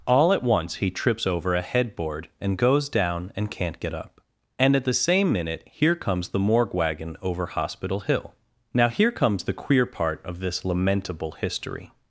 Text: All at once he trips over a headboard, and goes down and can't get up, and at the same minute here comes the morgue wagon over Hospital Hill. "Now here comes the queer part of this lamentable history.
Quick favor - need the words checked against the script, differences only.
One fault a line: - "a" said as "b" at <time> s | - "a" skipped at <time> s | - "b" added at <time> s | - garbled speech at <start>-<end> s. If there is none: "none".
none